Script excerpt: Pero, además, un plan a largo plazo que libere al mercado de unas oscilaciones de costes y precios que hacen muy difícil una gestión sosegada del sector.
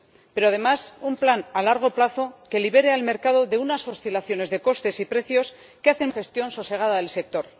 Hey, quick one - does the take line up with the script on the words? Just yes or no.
no